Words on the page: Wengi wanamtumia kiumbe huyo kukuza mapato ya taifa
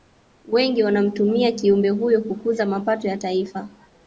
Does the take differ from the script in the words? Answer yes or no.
no